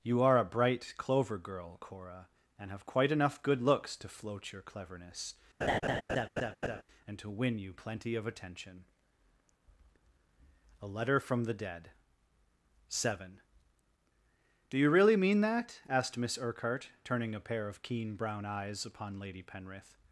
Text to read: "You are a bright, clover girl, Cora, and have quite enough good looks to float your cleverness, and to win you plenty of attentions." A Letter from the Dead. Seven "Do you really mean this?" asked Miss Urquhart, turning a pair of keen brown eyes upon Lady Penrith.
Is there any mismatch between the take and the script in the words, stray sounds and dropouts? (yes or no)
yes